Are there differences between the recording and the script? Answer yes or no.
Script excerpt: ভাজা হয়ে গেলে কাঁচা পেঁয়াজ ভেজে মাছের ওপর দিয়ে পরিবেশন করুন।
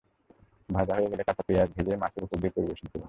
no